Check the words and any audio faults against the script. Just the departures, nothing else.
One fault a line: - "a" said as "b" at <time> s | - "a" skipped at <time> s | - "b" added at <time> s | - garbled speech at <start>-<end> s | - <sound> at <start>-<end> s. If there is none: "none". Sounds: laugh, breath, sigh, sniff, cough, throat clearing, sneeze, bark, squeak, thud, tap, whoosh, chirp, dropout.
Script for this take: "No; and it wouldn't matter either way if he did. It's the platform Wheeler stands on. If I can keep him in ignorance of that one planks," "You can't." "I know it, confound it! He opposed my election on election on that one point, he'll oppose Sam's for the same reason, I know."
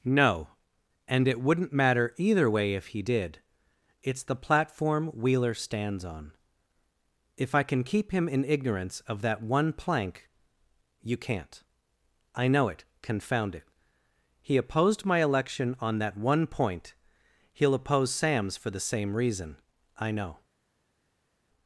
- "planks" said as "plank" at 9.7 s
- "election on" skipped at 16.0 s